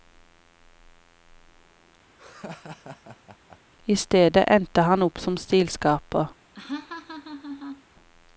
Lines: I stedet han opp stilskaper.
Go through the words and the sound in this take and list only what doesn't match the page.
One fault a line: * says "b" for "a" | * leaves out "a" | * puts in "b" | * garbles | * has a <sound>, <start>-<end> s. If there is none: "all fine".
* has a laugh, 2.2-3.6 s
* puts in "endte"
* puts in "som"
* has a laugh, 6.5-7.8 s